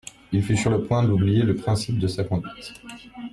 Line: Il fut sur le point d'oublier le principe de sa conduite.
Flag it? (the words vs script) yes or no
no